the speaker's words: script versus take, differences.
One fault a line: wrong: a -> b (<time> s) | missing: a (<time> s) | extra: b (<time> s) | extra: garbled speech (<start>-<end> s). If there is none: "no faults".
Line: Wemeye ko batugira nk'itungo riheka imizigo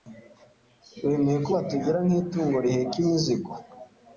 no faults